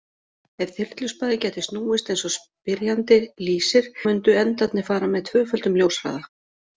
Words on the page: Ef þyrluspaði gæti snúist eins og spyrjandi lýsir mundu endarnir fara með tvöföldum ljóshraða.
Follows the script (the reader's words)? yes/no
yes